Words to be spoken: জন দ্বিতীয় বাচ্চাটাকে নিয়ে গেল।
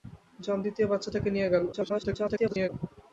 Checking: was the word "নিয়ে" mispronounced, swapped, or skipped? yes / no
no